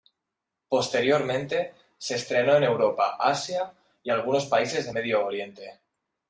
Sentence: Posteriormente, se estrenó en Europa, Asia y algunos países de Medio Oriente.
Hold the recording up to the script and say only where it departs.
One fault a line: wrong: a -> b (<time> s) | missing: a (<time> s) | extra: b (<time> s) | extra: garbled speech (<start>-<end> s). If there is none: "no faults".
no faults